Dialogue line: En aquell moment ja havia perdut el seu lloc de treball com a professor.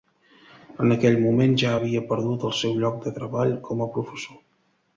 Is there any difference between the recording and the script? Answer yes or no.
no